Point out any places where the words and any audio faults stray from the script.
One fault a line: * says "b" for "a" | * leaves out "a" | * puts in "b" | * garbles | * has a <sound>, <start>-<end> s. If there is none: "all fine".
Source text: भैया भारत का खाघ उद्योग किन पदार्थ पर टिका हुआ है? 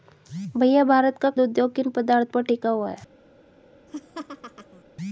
* leaves out "खाघ"
* has a laugh, 3.9-4.8 s